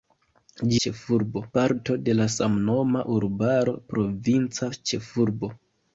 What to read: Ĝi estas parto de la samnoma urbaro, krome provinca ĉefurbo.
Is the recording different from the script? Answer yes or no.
yes